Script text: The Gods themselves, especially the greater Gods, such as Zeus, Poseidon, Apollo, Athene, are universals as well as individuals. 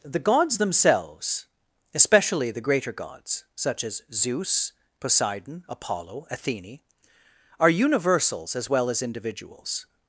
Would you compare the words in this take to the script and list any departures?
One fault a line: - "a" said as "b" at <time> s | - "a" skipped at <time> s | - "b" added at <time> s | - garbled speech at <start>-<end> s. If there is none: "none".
none